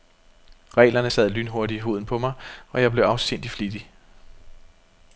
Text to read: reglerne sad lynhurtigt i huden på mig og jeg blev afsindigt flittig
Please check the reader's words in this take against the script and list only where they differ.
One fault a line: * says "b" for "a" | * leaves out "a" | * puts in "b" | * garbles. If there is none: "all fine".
all fine